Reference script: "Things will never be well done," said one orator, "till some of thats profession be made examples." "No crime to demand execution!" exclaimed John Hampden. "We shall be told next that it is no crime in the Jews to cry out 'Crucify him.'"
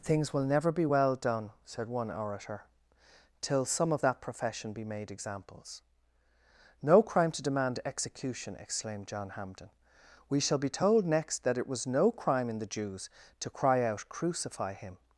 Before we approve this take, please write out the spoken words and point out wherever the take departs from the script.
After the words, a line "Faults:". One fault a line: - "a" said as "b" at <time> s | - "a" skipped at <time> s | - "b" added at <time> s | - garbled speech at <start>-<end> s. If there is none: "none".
"Things will never be well done," said one orator, "till some of that profession be made examples." "No crime to demand execution!" exclaimed John Hampden. "We shall be told next that it was no crime in the Jews to cry out 'Crucify him.'"
Faults:
- "thats" said as "that" at 4.0 s
- "is" said as "was" at 11.7 s